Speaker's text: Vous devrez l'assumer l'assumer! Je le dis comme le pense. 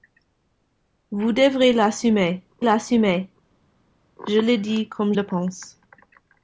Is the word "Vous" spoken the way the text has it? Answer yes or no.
yes